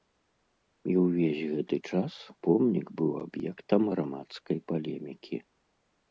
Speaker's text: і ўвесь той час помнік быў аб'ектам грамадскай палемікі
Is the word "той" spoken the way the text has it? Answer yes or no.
no